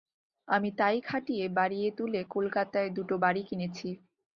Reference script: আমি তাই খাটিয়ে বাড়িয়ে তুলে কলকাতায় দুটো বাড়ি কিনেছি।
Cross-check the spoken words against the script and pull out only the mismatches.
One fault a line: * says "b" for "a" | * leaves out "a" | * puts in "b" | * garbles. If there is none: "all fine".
all fine